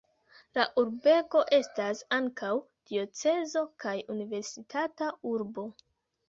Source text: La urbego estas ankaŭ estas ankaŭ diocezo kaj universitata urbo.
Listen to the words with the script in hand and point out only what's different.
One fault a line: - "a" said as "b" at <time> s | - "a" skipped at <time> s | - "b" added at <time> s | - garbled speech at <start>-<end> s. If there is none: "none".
- "estas ankaŭ" skipped at 2.5 s